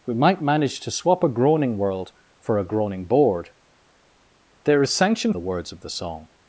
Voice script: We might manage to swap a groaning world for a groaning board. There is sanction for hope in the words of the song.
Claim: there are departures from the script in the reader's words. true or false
true